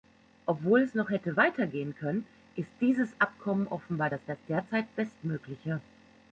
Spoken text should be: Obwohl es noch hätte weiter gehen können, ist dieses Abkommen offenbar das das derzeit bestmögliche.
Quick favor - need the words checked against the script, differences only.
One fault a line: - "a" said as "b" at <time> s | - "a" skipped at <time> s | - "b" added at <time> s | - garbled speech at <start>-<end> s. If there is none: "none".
none